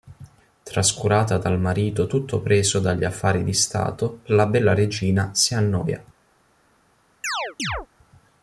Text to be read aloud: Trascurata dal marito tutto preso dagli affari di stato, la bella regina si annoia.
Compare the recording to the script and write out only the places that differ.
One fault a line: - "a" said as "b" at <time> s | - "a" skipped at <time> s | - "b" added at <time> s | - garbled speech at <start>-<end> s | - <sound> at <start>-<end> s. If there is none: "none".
- chirp at 7.2-7.9 s